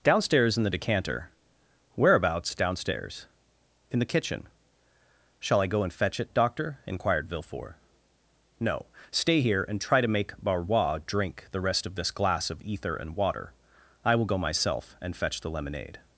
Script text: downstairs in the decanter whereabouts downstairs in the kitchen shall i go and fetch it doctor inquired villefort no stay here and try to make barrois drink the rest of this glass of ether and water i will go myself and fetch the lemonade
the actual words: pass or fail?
pass